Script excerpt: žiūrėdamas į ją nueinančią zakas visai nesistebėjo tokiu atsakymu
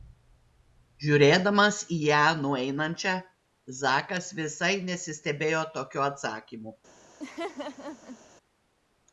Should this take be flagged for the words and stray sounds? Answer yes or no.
yes